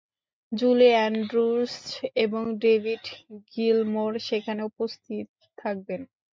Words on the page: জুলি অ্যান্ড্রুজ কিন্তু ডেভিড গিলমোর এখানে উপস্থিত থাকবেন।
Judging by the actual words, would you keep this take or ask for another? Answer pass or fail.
fail